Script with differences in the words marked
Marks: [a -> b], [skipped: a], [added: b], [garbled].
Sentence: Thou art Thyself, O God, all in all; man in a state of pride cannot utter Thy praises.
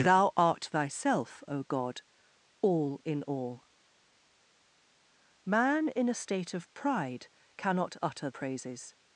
Thou art Thyself, O God, all in all; man in a state of pride cannot utter [skipped: Thy] praises.